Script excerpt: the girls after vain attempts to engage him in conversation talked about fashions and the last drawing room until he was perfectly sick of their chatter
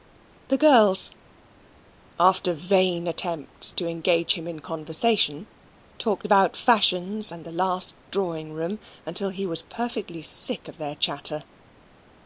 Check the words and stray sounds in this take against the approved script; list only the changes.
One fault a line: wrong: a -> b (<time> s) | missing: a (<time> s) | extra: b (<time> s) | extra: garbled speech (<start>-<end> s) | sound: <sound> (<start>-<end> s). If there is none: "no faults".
no faults